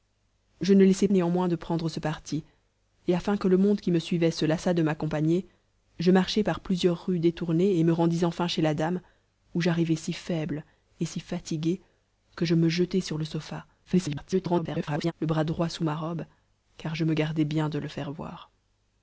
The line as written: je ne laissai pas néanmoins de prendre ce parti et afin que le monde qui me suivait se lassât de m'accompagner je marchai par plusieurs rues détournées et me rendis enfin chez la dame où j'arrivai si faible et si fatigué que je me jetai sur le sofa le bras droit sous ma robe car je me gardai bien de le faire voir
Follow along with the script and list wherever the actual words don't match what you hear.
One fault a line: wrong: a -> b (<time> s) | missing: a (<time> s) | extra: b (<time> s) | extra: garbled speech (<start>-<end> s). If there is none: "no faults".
missing: pas (1.1 s)
extra: garbled speech (13.8-15.1 s)